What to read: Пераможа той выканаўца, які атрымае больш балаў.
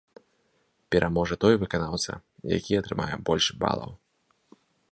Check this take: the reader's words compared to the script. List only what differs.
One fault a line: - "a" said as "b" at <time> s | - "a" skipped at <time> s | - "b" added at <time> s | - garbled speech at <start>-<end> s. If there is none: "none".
none